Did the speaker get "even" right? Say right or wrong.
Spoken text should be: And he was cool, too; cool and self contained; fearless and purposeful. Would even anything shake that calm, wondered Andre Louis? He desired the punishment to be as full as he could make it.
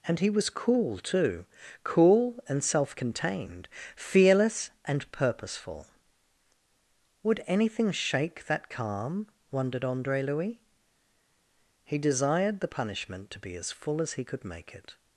wrong